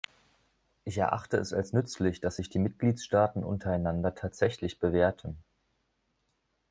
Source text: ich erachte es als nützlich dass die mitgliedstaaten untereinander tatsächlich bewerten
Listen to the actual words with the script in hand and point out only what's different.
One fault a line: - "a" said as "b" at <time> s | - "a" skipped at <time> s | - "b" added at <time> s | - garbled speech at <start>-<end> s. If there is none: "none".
- "sich" added at 2.4 s